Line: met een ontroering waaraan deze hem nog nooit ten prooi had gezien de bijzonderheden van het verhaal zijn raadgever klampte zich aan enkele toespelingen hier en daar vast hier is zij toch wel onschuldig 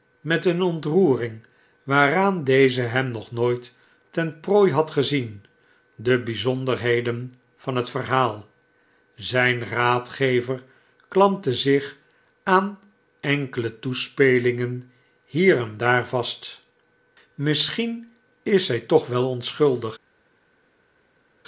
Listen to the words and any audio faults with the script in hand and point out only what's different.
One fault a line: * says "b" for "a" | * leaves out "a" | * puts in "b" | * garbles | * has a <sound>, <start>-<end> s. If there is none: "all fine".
* says "misschien" for "hier"